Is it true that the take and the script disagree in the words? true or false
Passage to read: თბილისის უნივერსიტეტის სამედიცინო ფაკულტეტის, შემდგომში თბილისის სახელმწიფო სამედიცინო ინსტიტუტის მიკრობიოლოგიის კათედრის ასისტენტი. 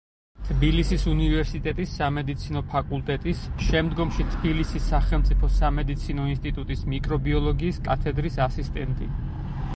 false